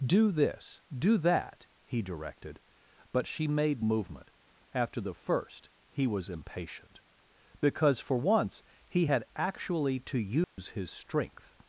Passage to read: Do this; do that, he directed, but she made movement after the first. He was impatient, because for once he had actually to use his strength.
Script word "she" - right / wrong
right